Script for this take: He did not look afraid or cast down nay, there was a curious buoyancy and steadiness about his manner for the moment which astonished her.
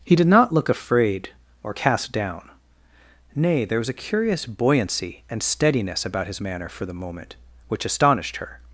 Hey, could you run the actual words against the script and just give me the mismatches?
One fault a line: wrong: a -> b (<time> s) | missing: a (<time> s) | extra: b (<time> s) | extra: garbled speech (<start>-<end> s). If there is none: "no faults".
no faults